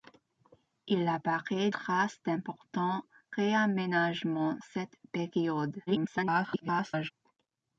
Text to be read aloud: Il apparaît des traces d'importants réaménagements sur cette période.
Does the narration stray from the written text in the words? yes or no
yes